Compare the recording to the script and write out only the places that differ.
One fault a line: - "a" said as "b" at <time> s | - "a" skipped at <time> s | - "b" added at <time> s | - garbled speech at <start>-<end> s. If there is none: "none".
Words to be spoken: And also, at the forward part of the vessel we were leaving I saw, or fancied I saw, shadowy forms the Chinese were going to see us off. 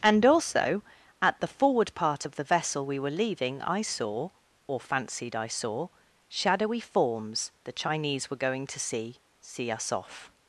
- "see" added at 9.4 s